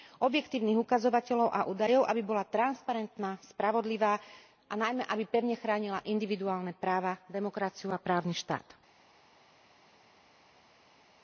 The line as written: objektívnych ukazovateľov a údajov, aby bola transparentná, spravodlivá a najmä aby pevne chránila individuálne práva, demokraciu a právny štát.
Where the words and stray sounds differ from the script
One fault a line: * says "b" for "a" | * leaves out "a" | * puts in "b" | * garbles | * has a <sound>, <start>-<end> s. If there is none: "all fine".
all fine